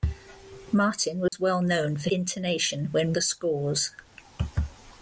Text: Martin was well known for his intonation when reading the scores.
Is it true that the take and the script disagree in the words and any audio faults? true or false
true